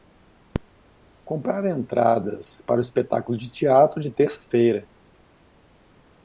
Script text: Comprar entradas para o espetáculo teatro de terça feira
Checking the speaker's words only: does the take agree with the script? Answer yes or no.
no